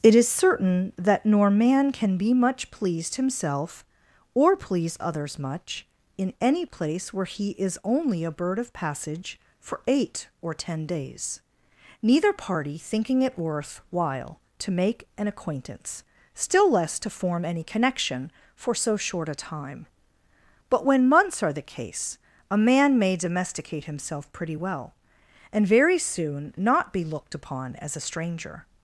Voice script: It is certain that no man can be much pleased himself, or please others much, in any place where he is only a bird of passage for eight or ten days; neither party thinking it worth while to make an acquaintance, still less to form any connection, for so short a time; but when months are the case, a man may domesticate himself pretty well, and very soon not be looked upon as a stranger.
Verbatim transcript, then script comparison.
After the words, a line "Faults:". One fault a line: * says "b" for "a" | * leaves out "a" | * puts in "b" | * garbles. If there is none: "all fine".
It is certain that nor man can be much pleased himself, or please others much, in any place where he is only a bird of passage for eight or ten days; neither party thinking it worth while to make an acquaintance, still less to form any connection, for so short a time; but when months are the case, a man may domesticate himself pretty well, and very soon not be looked upon as a stranger.
Faults:
* says "nor" for "no"